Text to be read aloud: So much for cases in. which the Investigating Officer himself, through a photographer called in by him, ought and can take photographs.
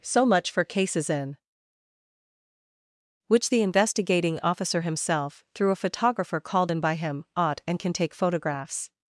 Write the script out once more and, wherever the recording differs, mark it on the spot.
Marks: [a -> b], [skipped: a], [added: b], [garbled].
So much for cases in. which the Investigating Officer himself, through a photographer called in by him, ought and can take photographs.